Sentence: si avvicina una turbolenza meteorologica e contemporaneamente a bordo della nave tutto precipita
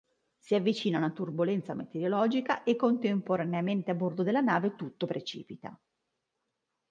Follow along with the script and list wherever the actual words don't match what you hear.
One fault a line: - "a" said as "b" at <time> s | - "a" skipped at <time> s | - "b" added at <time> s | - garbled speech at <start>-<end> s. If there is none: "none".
none